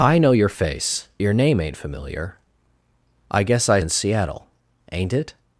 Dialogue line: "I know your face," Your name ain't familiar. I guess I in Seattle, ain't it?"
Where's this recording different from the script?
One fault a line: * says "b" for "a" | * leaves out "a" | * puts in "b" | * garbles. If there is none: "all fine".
all fine